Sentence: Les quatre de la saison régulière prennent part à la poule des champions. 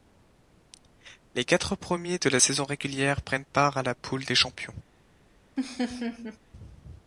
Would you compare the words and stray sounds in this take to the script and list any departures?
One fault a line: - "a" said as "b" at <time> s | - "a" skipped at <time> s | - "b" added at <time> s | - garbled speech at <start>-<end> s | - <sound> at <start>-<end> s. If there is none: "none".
- "premiers" added at 1.8 s
- laugh at 5.6-6.4 s